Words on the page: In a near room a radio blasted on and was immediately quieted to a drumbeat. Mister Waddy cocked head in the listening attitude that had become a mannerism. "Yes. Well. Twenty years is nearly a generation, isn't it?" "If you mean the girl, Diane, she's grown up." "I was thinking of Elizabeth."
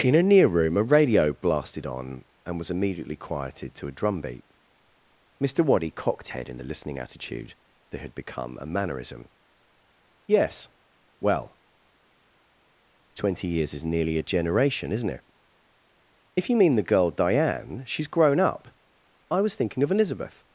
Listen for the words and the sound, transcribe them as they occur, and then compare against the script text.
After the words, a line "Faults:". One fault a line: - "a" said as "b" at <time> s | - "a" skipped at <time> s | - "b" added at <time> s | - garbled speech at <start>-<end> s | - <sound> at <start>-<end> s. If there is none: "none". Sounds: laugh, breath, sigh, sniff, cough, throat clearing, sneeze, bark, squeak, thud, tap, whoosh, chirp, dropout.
In a near room a radio blasted on and was immediately quieted to a drumbeat. Mister Waddy cocked head in the listening attitude that had become a mannerism. "Yes. Well. Twenty years is nearly a generation, isn't it?" "If you mean the girl, Diane, she's grown up." "I was thinking of Elizabeth."
Faults:
none